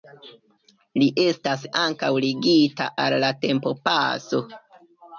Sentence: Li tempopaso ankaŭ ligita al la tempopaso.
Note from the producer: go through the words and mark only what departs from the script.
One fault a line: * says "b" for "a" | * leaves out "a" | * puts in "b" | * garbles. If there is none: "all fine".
* says "estas" for "tempopaso"